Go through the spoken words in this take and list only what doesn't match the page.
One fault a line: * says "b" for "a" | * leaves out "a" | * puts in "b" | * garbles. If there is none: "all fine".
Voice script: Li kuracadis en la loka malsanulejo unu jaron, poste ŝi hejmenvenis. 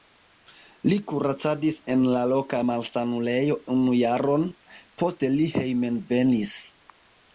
* says "li" for "ŝi"